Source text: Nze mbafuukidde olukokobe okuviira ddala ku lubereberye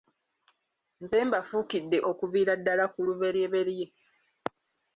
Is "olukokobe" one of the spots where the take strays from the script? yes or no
yes